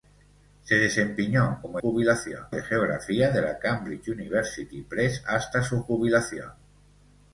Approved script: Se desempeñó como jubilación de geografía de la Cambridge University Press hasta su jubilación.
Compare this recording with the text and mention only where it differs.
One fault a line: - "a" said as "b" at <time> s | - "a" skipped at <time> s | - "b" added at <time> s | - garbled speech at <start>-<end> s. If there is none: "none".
none